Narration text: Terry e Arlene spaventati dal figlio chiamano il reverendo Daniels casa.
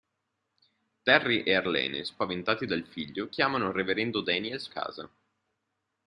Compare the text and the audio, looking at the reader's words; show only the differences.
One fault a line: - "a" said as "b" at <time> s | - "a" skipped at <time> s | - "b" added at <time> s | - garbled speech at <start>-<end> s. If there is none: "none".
none